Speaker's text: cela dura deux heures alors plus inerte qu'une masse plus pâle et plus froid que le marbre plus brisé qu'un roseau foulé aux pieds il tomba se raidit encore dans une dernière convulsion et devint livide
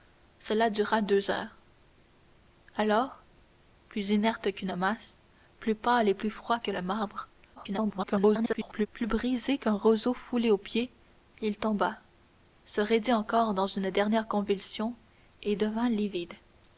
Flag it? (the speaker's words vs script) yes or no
yes